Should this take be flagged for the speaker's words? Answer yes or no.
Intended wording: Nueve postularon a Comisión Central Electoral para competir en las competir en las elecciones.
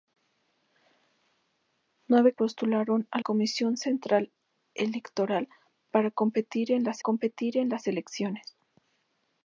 no